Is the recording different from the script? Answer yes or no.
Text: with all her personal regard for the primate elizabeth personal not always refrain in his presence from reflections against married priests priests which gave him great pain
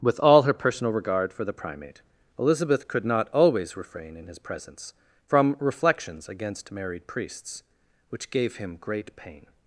yes